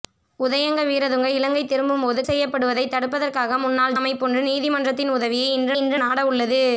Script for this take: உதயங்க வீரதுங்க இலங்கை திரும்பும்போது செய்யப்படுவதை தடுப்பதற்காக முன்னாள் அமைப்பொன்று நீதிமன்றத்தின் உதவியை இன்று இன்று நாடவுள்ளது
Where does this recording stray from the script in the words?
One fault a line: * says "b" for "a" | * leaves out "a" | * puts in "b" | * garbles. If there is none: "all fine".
all fine